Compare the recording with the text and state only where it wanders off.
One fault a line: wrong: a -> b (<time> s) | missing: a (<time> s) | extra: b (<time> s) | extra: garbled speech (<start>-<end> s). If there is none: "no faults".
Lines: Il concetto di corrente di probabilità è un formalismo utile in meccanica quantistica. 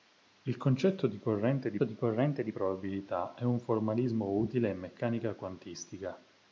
extra: di corrente di (1.8 s)